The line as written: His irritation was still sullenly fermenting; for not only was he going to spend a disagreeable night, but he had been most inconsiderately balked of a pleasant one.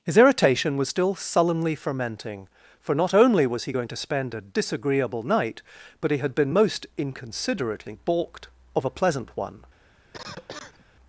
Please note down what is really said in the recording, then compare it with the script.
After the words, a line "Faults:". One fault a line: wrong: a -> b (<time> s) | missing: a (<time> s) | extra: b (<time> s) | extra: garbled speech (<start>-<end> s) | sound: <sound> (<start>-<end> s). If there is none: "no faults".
His irritation was still sullenly fermenting; for not only was he going to spend a disagreeable night, but he had been most inconsiderately balked of a pleasant one.
Faults:
sound: cough (10.1-10.9 s)